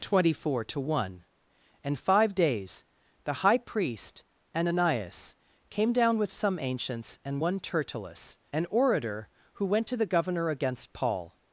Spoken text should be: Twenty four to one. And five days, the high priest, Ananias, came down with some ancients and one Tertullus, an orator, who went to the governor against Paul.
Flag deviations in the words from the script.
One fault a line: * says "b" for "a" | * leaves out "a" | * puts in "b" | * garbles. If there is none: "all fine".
all fine